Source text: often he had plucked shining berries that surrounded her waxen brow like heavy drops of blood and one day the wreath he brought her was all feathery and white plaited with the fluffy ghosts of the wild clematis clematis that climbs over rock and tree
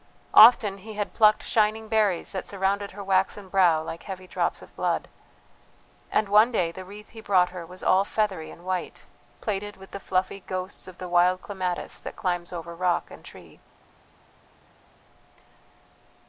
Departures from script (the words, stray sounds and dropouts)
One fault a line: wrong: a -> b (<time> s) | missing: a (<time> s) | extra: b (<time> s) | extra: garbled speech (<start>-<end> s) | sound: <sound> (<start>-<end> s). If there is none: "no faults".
missing: clematis (12.0 s)